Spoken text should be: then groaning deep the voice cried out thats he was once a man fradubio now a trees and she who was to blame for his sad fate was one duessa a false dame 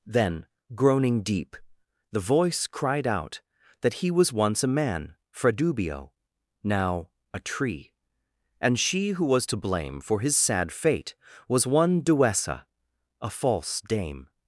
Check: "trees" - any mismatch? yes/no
yes